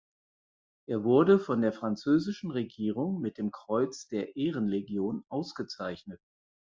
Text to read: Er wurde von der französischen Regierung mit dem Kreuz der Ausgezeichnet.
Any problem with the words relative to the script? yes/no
yes